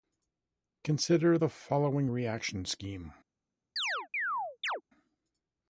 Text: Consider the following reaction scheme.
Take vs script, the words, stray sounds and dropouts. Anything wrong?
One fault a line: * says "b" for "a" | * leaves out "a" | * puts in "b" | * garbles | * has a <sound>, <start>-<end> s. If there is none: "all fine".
* has a chirp, 3.8-4.8 s